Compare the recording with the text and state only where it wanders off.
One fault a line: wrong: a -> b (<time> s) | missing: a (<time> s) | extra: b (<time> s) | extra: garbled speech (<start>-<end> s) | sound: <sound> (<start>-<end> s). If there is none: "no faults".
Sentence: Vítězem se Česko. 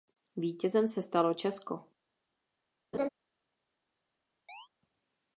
extra: stalo (1.0 s)
sound: laugh (2.9-3.1 s)
sound: chirp (4.5-4.7 s)